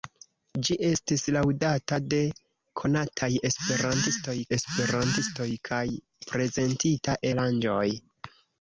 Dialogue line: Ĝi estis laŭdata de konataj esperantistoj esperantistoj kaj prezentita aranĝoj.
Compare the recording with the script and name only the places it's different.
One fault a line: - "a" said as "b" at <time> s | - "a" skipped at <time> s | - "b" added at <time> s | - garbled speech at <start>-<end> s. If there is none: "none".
none